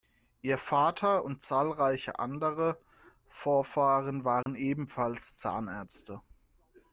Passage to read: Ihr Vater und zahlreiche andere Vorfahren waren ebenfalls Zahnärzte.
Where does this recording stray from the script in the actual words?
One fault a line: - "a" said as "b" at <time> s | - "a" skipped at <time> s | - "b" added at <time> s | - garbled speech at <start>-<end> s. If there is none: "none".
none